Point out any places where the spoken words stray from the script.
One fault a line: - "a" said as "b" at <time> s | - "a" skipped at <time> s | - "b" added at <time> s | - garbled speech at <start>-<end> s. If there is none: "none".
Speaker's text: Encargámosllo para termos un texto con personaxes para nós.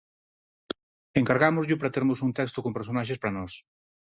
none